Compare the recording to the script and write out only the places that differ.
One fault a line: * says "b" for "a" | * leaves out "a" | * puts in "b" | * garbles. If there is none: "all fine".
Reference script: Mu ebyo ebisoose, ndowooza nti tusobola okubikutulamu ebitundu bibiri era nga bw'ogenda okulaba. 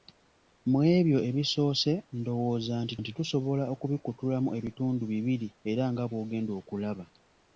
* puts in "nti"